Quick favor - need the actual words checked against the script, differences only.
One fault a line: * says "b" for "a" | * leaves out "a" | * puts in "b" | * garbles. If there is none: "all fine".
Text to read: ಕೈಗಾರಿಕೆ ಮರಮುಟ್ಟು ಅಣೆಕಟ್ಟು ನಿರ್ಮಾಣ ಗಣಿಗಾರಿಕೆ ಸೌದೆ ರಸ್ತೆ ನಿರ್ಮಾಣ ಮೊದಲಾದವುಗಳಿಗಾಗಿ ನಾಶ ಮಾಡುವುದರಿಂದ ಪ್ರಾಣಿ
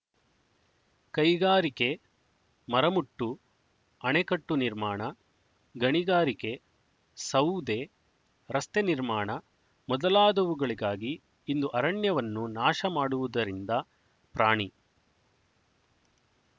* puts in "ಇಂದು ಅರಣ್ಯವನ್ನು"